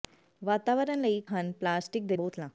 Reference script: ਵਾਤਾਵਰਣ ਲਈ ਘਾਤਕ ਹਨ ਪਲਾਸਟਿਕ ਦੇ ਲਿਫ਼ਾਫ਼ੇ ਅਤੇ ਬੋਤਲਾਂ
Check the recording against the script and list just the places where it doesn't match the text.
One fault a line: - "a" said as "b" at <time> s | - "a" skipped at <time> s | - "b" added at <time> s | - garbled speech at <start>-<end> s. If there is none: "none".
- "ਘਾਤਕ" skipped at 1.2 s
- "ਲਿਫ਼ਾਫ਼ੇ ਅਤੇ" skipped at 2.2 s